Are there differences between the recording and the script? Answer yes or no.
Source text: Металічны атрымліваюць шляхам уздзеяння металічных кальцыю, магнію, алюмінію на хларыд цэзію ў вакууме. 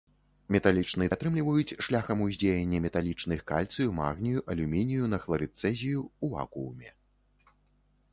no